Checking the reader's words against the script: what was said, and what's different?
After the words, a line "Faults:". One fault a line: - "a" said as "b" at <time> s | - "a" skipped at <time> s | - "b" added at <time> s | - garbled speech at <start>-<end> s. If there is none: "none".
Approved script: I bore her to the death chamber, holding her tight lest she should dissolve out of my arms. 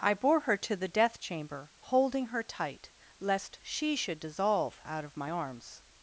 I bore her to the death chamber, holding her tight lest she should dissolve out of my arms.
Faults:
none